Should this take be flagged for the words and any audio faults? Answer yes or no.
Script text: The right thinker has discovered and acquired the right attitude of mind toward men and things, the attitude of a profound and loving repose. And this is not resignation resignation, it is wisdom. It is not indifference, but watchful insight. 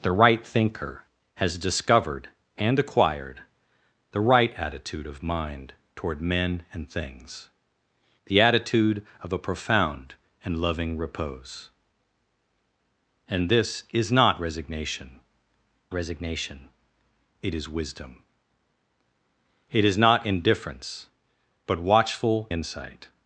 no